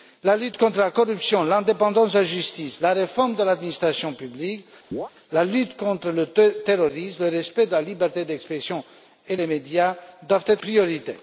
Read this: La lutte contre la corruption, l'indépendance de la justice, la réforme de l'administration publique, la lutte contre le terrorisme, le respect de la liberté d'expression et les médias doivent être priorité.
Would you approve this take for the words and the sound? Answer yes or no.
no